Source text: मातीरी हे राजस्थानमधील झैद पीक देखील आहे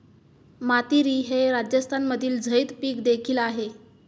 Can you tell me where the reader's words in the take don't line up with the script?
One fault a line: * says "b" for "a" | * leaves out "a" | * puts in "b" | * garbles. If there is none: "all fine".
all fine